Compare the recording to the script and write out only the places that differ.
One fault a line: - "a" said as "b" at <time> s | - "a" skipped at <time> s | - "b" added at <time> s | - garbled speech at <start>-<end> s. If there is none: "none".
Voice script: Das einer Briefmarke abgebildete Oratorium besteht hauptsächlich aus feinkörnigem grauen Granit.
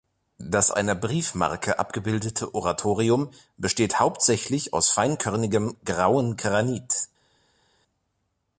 none